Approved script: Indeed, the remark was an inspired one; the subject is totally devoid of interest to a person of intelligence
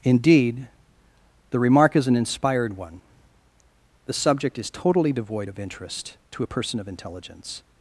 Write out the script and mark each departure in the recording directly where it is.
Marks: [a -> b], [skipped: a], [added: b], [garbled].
Indeed, the remark [was -> is] an inspired one; the subject is totally devoid of interest to a person of intelligence